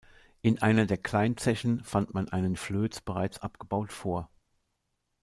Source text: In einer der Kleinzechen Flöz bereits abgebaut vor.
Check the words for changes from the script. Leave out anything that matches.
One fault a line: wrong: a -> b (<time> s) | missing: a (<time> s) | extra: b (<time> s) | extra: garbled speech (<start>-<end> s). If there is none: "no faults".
extra: fand man einen (1.8 s)